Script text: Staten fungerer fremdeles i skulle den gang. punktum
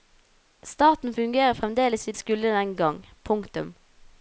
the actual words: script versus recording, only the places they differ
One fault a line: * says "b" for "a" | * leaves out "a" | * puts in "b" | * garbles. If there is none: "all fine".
all fine